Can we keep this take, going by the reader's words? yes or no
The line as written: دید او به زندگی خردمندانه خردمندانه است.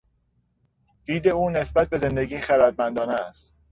no